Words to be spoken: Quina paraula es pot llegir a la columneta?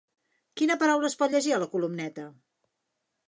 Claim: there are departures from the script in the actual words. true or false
false